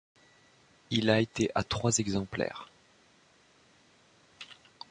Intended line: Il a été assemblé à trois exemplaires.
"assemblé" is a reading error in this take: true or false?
true